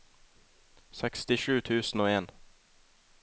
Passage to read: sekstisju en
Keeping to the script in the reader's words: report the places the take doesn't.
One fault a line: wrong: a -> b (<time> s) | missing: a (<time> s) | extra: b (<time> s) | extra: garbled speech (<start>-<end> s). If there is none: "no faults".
extra: tusen og (1.6 s)